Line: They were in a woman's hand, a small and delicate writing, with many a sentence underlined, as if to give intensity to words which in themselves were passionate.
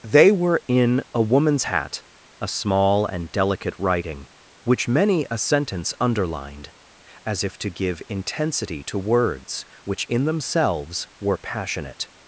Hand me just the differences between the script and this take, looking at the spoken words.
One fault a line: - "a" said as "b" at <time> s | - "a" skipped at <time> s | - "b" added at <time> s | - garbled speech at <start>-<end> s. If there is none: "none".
- "hand" said as "hat" at 1.6 s
- "with" said as "which" at 4.6 s